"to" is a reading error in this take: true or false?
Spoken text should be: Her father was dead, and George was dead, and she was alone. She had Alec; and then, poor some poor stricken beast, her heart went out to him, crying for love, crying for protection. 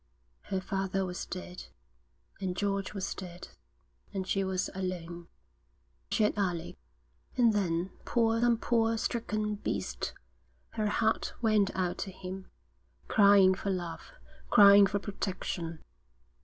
false